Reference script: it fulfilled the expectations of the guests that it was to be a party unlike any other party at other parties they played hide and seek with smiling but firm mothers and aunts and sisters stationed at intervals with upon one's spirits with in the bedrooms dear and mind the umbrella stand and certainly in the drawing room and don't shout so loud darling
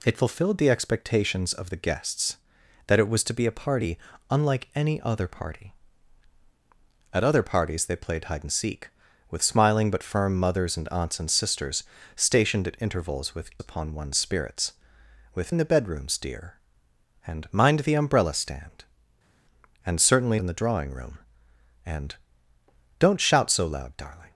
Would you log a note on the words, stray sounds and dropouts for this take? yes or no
no